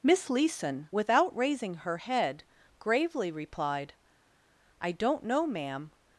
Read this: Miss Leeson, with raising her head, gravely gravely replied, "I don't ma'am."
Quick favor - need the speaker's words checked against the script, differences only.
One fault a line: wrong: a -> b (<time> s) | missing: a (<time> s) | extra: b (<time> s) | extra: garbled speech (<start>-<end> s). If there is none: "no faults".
wrong: with -> without (0.9 s)
missing: gravely (3.3 s)
extra: know (5.2 s)